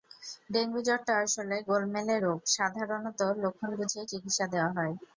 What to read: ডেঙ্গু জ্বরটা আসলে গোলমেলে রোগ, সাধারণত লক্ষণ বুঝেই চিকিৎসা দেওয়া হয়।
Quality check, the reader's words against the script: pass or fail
pass